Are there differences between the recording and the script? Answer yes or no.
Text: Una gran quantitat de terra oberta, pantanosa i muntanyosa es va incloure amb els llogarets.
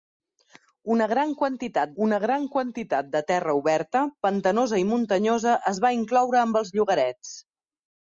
yes